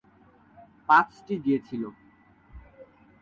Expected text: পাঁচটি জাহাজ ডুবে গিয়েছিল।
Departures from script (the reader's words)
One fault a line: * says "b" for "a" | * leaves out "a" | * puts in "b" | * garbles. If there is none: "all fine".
* leaves out "জাহাজ ডুবে"